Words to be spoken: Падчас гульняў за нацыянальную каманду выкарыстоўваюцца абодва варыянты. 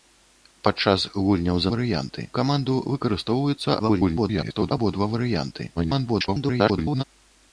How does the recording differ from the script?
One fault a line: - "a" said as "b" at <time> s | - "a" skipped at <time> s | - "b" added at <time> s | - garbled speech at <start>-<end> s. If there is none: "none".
- "нацыянальную" said as "варыянты" at 1.7 s
- garbled speech at 3.8-4.7 s
- garbled speech at 5.8-7.0 s